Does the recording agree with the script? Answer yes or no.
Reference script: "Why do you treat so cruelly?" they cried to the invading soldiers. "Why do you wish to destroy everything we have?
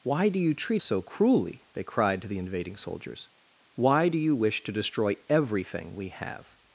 yes